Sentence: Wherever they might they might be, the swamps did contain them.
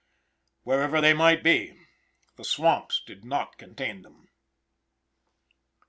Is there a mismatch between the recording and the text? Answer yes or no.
yes